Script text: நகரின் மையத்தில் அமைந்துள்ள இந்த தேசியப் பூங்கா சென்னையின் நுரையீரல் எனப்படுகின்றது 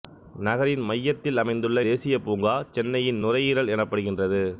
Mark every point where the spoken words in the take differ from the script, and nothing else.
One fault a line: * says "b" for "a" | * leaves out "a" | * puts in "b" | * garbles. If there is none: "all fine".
* leaves out "இந்த"